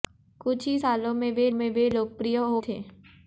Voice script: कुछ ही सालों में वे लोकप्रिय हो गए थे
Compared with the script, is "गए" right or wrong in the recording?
wrong